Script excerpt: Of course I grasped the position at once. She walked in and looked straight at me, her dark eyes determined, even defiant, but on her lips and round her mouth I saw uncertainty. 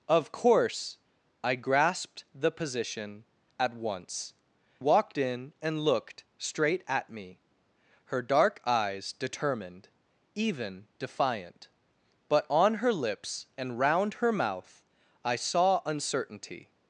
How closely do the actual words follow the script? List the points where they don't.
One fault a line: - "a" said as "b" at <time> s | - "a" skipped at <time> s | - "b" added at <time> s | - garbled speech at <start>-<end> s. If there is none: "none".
- "She" skipped at 4.3 s